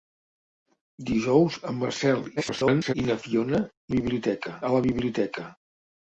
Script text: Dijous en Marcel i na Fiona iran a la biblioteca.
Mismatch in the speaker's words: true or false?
true